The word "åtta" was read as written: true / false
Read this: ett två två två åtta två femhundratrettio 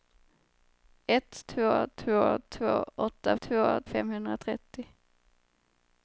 true